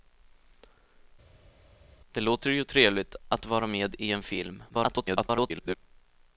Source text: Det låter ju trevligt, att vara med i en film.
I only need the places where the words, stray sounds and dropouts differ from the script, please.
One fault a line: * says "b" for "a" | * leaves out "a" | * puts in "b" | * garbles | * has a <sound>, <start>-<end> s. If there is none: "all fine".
* garbles